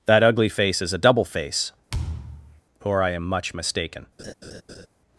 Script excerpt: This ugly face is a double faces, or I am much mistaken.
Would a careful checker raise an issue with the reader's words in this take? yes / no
yes